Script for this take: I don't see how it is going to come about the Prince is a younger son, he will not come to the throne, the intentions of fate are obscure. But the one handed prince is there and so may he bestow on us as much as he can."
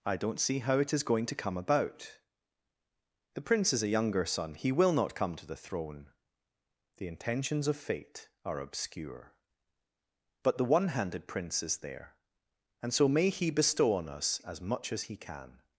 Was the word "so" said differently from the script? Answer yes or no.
no